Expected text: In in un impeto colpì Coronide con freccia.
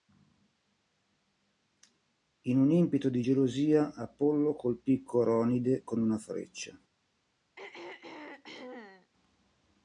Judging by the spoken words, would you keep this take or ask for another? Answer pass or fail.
fail